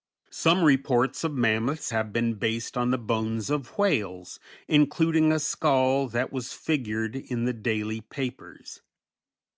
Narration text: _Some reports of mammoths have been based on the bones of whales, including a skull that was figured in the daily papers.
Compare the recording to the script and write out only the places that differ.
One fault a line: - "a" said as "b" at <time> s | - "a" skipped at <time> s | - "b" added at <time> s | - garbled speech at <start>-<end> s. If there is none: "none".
none